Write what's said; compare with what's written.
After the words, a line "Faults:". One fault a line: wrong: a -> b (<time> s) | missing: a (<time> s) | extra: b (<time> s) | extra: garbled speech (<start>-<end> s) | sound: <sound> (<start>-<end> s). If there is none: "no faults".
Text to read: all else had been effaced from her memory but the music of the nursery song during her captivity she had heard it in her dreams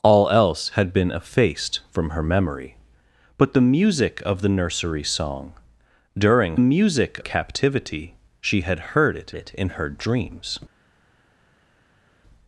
all else had been effaced from her memory but the music of the nursery song during music captivity she had heard it it in her dreams
Faults:
wrong: her -> music (6.6 s)
extra: it (9.3 s)